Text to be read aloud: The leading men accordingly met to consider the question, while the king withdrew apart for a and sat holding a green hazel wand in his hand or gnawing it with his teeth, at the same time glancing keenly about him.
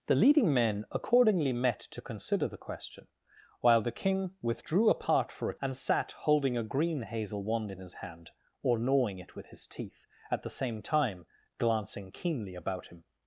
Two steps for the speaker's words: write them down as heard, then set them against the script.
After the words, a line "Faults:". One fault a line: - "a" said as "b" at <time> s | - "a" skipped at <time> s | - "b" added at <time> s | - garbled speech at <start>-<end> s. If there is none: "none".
The leading men accordingly met to consider the question, while the king withdrew apart for a and sat holding a green hazel wand in his hand or gnawing it with his teeth, at the same time glancing keenly about him.
Faults:
none